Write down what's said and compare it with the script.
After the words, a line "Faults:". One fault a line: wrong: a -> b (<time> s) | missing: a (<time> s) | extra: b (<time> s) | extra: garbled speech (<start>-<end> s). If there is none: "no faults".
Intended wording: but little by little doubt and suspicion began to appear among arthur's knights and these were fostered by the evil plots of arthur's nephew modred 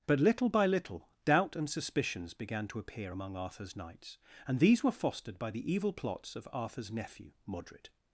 but little by little doubt and suspicions began to appear among arthur's knights and these were fostered by the evil plots of arthur's nephew modred
Faults:
wrong: suspicion -> suspicions (1.7 s)